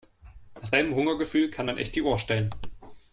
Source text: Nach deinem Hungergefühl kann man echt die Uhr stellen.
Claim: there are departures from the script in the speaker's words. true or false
false